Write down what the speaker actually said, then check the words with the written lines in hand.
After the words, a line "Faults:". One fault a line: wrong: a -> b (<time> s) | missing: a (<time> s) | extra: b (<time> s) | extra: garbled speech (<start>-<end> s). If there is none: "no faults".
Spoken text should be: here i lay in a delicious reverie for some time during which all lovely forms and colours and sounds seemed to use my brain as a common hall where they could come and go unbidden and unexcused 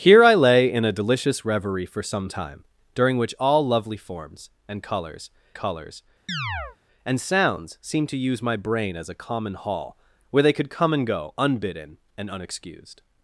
here i lay in a delicious reverie for some time during which all lovely forms and colours colours and sounds seemed to use my brain as a common hall where they could come and go unbidden and unexcused
Faults:
extra: colours (5.5 s)